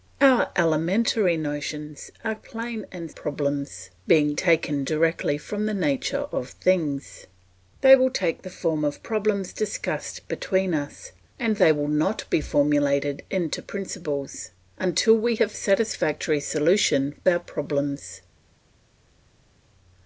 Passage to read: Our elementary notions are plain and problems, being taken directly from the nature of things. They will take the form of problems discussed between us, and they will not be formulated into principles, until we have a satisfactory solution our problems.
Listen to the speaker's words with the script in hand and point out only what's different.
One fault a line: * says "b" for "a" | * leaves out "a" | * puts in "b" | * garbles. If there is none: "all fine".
all fine